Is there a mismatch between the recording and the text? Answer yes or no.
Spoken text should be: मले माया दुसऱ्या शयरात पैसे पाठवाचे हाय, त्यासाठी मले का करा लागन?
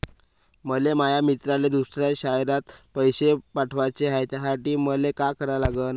yes